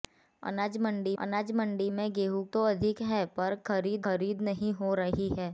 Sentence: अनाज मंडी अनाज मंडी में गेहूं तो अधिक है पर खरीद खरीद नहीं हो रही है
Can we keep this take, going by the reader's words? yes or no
yes